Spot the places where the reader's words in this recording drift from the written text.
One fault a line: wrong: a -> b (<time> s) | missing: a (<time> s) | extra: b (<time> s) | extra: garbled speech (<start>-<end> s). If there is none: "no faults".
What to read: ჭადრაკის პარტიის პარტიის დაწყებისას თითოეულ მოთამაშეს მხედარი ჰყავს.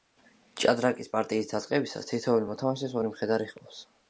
missing: პარტიის (1.5 s)
extra: ორი (3.0 s)